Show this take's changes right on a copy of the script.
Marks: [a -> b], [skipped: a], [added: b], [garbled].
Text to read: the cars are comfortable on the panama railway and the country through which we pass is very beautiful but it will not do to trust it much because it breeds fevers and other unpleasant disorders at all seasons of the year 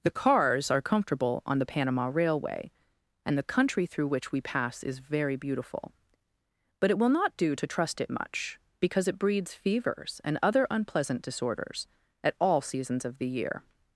the cars are comfortable on the panama railway and the country through which we pass is very beautiful but it will not do to trust it much because it breeds fevers and other unpleasant disorders at all seasons of the year